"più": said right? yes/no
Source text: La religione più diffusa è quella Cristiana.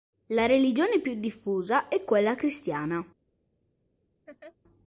yes